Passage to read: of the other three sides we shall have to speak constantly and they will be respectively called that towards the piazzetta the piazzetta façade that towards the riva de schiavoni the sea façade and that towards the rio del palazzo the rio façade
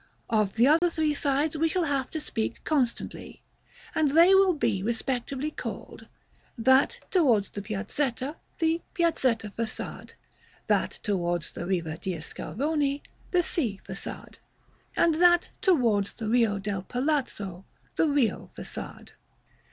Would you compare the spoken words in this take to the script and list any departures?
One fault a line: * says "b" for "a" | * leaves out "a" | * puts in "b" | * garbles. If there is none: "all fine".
all fine